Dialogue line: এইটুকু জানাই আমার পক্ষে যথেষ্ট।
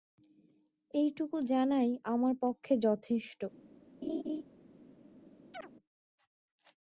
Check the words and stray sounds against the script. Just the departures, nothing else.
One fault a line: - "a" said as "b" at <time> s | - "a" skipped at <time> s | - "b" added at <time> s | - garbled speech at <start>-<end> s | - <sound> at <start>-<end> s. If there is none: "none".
- laugh at 4.0-4.4 s
- chirp at 5.5-5.7 s